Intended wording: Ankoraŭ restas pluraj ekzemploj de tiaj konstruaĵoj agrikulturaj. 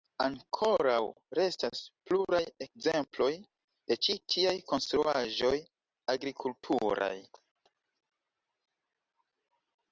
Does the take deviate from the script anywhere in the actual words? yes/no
yes